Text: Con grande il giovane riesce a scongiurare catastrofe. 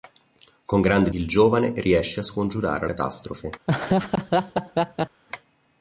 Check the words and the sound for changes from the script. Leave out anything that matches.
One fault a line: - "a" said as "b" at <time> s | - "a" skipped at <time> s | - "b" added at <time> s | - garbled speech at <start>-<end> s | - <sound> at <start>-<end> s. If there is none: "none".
- laugh at 3.7-5.2 s